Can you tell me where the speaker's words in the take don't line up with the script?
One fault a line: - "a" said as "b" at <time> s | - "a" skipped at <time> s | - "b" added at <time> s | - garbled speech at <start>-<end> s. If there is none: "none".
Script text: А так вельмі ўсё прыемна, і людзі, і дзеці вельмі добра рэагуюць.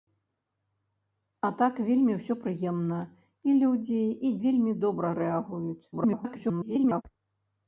- "дзеці" skipped at 4.3 s
- garbled speech at 5.9-7.0 s